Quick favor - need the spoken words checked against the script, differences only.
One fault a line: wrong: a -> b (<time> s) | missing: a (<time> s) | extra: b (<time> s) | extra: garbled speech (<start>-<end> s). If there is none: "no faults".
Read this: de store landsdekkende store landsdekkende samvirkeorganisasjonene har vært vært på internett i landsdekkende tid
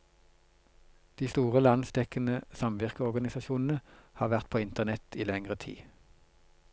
missing: store landsdekkende (2.4 s)
missing: vært (4.5 s)
wrong: landsdekkende -> lengre (5.3 s)